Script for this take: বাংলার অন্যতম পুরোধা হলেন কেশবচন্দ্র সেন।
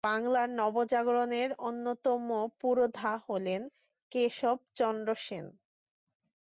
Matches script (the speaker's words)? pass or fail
fail